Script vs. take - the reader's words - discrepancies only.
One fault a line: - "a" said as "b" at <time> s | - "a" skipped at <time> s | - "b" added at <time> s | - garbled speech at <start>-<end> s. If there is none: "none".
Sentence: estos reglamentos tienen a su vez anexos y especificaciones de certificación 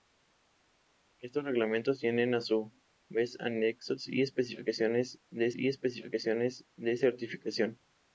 - "y especificaciones de" added at 5.5 s